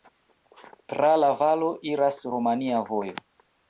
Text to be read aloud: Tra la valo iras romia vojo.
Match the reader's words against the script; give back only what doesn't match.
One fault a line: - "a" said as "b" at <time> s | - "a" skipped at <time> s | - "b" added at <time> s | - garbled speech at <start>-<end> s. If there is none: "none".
none